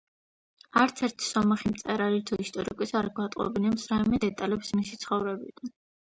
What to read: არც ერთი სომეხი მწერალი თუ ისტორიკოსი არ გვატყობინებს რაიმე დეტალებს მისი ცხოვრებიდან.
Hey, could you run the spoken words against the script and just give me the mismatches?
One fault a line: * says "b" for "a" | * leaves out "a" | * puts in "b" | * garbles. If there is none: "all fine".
all fine